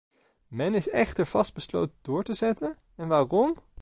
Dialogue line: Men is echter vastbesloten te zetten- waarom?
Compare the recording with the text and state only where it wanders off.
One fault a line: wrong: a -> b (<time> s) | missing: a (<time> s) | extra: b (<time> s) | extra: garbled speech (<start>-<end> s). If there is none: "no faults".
extra: door (2.0 s)
extra: en (3.0 s)